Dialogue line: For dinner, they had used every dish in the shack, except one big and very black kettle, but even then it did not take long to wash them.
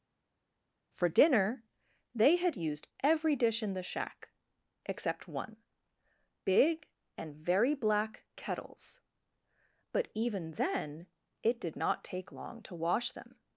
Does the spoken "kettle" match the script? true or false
false